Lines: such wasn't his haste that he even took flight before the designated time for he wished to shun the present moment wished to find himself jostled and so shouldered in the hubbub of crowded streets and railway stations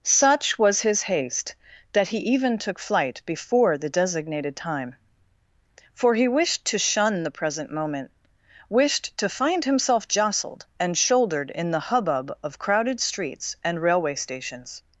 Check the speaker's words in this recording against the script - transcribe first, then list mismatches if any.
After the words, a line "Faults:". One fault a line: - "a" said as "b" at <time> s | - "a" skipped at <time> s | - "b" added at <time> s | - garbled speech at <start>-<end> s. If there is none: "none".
such was his haste that he even took flight before the designated time for he wished to shun the present moment wished to find himself jostled and shouldered in the hubbub of crowded streets and railway stations
Faults:
- "wasn't" said as "was" at 0.6 s
- "so" skipped at 11.0 s